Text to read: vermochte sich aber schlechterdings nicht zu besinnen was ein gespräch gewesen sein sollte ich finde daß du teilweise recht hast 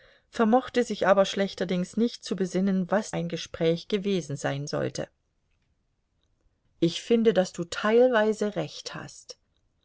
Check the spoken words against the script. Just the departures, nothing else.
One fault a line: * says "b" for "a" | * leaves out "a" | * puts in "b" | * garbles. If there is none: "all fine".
all fine